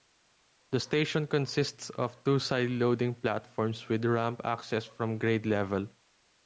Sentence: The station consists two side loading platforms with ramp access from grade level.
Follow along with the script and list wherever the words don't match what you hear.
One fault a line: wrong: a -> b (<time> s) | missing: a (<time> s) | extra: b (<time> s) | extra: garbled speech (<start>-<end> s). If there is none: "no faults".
extra: of (1.9 s)